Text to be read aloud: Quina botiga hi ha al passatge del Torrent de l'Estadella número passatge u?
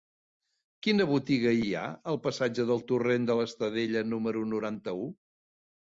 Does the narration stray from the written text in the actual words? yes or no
yes